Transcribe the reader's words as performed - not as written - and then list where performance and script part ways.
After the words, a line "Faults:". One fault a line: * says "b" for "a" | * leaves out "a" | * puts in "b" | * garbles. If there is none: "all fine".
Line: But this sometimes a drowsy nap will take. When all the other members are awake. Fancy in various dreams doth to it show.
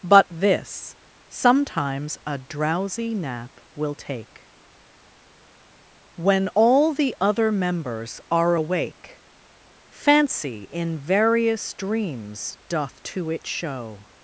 But this sometimes a drowsy nap will take. When all the other members are awake. Fancy in various dreams doth to it show.
Faults:
all fine